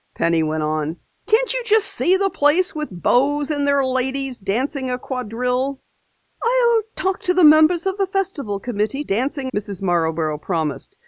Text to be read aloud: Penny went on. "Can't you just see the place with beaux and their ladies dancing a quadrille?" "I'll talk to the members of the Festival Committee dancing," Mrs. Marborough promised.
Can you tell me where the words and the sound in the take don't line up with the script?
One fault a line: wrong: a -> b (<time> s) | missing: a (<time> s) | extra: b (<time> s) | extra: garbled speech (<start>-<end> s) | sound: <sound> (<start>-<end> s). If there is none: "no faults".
no faults